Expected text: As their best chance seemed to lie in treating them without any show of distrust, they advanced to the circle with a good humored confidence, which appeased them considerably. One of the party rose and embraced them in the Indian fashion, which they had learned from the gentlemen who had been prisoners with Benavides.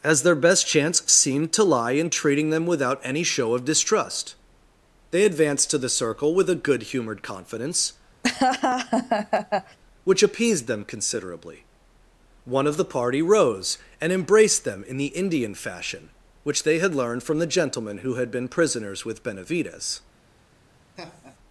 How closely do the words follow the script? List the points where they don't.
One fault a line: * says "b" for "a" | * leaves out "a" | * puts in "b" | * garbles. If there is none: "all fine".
all fine